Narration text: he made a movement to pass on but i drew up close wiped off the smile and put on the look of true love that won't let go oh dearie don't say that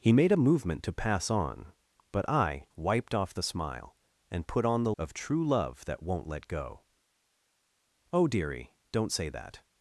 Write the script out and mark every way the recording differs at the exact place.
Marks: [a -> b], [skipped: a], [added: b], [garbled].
he made a movement to pass on but i [skipped: drew up close] wiped off the smile and put on the [skipped: look] of true love that won't let go oh dearie don't say that